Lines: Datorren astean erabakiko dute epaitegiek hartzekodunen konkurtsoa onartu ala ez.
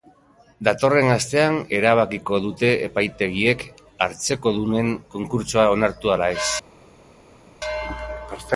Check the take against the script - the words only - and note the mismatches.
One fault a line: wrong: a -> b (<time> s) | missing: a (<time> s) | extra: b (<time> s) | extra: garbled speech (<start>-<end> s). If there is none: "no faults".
no faults